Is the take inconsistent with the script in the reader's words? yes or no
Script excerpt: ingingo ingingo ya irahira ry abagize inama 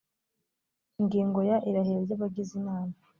yes